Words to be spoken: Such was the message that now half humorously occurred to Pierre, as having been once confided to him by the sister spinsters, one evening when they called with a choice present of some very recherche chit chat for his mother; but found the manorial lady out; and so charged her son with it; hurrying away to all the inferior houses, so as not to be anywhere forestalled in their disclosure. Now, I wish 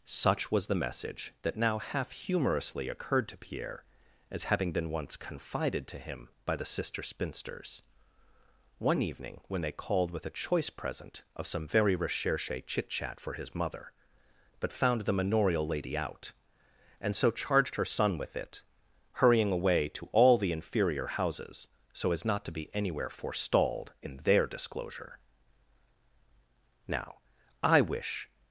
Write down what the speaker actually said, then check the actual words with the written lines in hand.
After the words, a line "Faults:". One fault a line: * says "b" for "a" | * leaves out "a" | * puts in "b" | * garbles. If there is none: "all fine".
Such was the message that now half humorously occurred to Pierre, as having been once confided to him by the sister spinsters, one evening when they called with a choice present of some very recherche chit chat for his mother; but found the manorial lady out; and so charged her son with it; hurrying away to all the inferior houses, so as not to be anywhere forestalled in their disclosure. Now, I wish
Faults:
all fine